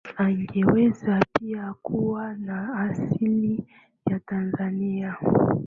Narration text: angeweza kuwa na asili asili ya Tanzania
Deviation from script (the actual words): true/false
true